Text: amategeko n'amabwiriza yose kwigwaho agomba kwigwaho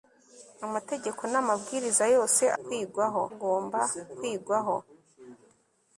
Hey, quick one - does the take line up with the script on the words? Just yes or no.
yes